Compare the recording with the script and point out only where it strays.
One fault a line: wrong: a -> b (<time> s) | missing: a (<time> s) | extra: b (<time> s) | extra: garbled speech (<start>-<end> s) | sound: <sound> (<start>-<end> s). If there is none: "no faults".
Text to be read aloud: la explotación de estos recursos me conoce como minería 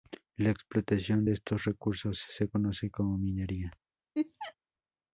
wrong: me -> se (2.3 s)
sound: laugh (4.1-4.5 s)